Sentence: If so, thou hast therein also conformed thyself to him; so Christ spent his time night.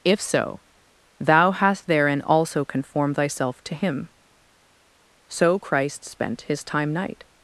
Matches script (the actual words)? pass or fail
pass